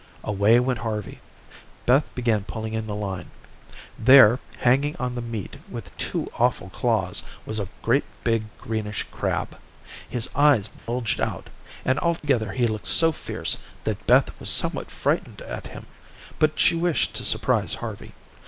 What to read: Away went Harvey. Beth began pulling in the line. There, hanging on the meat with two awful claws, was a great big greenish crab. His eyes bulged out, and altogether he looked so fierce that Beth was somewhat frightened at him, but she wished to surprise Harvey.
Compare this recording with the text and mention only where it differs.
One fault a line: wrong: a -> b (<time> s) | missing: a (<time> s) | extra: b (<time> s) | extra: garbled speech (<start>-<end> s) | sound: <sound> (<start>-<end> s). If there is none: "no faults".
sound: dropout (10.8-10.9 s)
sound: dropout (12.2-12.2 s)